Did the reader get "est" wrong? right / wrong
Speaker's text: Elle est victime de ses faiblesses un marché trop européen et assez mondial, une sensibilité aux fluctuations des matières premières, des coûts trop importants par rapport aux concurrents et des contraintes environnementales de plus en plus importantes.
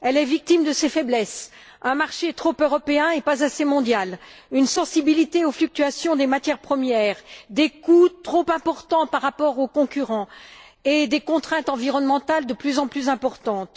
right